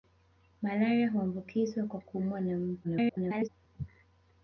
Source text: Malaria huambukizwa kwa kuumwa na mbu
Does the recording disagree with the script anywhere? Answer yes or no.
yes